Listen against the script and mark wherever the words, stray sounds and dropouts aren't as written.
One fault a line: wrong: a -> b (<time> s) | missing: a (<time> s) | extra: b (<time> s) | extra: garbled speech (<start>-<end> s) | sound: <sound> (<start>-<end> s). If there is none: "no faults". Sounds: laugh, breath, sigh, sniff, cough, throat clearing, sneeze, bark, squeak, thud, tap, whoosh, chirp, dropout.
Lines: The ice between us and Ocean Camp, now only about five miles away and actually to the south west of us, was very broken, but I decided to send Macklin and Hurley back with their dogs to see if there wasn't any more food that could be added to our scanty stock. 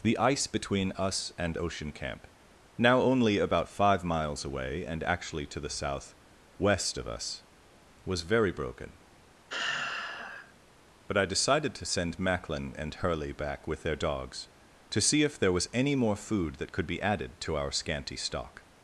sound: sigh (9.5-10.5 s)
wrong: wasn't -> was (15.5 s)